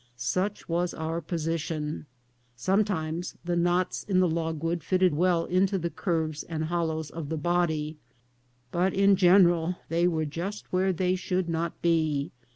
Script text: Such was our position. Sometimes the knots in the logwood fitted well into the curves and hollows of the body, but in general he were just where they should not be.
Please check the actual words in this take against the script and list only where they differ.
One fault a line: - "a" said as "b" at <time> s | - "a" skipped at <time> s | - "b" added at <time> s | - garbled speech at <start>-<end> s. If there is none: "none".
- "he" said as "they" at 9.9 s